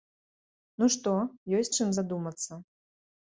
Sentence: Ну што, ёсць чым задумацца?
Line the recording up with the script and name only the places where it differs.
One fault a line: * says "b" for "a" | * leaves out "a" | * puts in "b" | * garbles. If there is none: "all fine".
all fine